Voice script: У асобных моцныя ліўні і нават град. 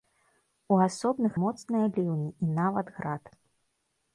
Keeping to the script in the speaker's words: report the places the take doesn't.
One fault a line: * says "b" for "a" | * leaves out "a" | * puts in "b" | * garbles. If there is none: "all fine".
all fine